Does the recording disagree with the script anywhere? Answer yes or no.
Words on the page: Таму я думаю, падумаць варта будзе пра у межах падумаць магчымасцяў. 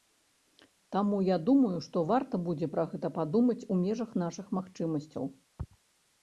yes